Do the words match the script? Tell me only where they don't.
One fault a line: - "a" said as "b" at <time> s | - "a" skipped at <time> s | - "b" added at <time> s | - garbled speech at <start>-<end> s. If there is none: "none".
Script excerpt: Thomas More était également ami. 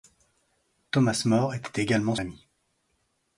none